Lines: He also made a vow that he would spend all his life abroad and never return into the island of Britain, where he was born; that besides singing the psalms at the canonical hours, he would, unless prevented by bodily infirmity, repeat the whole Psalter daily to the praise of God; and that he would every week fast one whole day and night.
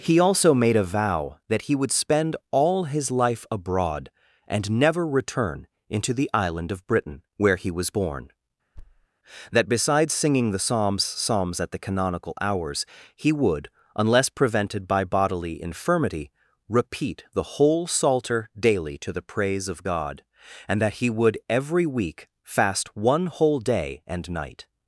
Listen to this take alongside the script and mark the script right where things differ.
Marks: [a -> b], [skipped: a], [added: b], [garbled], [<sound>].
He also made a vow that he would spend all his life abroad and never return into the island of Britain, where he was born; [thud] that besides singing the psalms [added: psalms] at the canonical hours, he would, unless prevented by bodily infirmity, repeat the whole Psalter daily to the praise of God; and that he would every week fast one whole day and night.